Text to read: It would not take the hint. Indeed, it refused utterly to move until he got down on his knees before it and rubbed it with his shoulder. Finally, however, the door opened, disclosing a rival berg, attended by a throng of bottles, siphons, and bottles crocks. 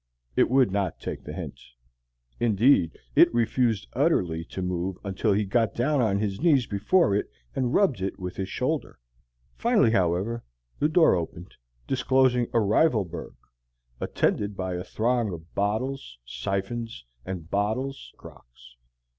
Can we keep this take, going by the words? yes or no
yes